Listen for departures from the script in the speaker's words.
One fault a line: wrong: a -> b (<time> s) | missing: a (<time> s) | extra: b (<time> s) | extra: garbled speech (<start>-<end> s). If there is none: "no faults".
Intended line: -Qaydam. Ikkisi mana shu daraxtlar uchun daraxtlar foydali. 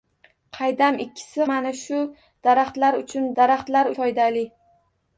no faults